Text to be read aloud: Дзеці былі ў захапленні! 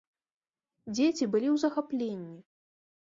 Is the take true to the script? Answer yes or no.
yes